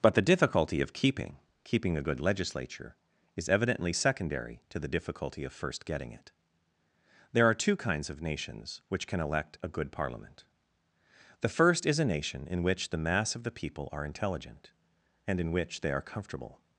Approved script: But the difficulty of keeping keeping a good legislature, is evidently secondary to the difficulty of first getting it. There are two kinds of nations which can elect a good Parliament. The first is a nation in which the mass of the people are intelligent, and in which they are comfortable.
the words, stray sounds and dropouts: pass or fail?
pass